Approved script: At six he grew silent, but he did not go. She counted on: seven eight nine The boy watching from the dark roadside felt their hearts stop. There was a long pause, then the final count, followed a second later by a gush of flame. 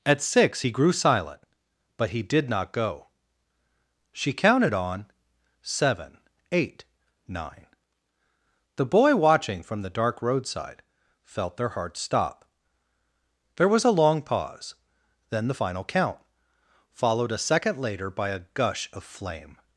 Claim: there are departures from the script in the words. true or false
false